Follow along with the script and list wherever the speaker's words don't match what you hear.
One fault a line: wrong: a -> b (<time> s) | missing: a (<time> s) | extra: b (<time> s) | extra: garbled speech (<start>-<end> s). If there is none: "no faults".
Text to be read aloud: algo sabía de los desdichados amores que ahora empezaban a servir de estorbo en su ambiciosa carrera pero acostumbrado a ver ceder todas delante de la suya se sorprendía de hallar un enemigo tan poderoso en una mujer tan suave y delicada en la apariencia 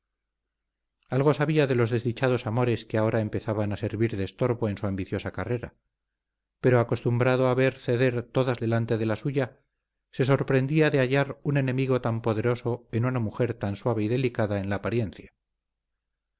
no faults